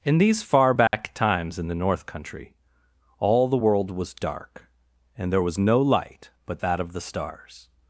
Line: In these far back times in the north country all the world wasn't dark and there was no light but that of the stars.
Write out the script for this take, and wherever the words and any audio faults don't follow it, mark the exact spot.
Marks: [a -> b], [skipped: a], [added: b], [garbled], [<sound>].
In these far back [dropout] times in the north country all the world [wasn't -> was] dark and there was no light but that of the stars.